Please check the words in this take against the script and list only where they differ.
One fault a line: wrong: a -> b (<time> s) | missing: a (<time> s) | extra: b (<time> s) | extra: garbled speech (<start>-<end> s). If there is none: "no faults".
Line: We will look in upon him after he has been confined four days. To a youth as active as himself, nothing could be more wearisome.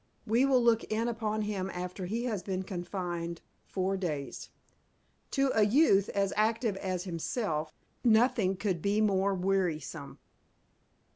no faults